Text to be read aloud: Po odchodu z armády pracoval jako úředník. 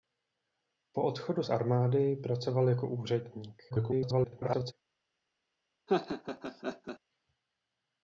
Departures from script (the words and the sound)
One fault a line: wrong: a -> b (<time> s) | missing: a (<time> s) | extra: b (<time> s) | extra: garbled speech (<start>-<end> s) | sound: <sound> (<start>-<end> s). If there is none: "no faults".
extra: garbled speech (3.7-4.7 s)
sound: laugh (5.9-7.0 s)